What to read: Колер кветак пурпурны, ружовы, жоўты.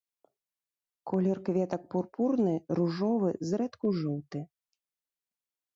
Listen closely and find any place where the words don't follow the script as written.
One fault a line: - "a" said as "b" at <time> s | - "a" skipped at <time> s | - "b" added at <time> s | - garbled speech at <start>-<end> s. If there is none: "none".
- "зрэдку" added at 3.5 s